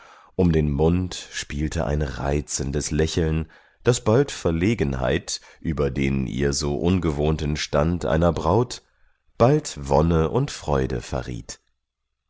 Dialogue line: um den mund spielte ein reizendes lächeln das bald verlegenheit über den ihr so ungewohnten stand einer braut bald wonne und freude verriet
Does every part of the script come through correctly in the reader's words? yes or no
yes